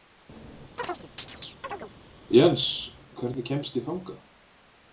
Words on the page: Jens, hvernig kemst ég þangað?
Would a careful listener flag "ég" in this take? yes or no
no